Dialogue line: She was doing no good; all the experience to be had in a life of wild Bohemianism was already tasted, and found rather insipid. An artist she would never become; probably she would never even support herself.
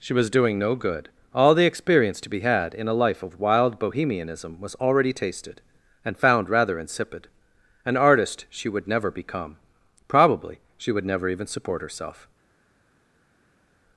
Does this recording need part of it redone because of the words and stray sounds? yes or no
no